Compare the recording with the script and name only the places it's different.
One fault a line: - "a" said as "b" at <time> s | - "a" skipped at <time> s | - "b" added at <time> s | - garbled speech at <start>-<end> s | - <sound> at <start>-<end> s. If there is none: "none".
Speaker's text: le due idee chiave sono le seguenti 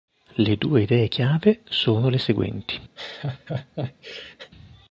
- laugh at 3.0-4.5 s